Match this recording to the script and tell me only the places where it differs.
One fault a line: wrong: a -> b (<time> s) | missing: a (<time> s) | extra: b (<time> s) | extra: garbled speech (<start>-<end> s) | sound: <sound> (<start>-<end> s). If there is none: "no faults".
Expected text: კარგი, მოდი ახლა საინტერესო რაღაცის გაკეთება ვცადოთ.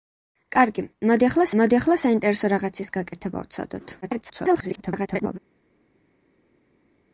extra: მოდი ახლა (1.6 s)
extra: garbled speech (4.0-5.4 s)